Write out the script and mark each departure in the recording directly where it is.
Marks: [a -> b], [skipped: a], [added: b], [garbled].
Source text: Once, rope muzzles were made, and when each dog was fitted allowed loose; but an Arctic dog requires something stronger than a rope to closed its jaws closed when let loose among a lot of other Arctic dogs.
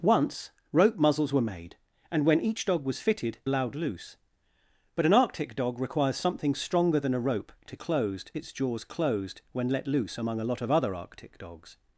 Once, rope muzzles were made, and when each dog was fitted allowed loose; but an Arctic dog requires something stronger than a rope to closed its jaws closed when let loose among a lot of other Arctic dogs.